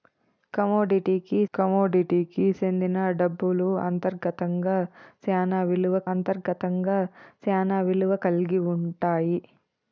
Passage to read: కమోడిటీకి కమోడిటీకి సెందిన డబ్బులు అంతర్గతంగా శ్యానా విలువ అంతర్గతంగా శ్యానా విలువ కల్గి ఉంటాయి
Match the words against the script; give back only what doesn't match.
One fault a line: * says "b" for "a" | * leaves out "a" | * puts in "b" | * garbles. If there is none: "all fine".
all fine